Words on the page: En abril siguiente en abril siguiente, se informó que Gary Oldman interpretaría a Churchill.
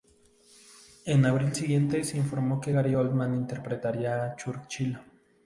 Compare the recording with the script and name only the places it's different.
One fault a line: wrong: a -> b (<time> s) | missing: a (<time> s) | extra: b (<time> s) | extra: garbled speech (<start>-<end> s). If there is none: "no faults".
missing: en abril siguiente (2.0 s)